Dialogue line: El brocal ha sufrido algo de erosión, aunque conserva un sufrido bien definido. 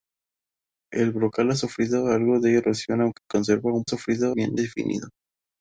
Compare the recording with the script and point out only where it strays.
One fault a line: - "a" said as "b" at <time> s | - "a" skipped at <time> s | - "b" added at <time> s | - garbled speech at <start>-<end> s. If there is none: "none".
none